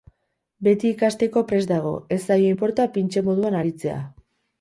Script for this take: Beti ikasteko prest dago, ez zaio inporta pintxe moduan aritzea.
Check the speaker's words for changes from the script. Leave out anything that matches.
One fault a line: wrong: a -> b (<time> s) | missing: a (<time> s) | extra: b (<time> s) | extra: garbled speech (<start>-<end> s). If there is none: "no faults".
no faults